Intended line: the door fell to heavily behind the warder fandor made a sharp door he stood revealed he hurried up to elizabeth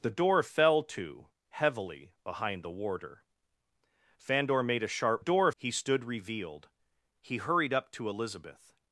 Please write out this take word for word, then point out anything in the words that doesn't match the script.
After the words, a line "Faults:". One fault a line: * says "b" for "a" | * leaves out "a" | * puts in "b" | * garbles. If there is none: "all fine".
the door fell to heavily behind the warder fandor made a sharp door he stood revealed he hurried up to elizabeth
Faults:
all fine